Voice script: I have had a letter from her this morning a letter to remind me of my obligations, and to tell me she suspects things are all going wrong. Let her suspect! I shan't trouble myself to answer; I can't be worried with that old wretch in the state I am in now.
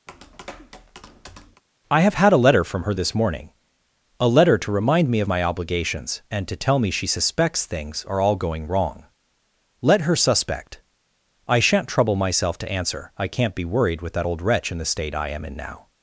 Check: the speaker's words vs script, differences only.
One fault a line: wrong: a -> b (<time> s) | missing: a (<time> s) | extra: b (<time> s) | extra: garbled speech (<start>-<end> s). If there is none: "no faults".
no faults